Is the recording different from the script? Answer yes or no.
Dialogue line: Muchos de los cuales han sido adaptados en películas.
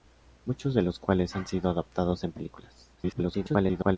yes